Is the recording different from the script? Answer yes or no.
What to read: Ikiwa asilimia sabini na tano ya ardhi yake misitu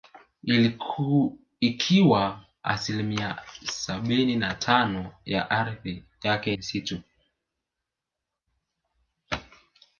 no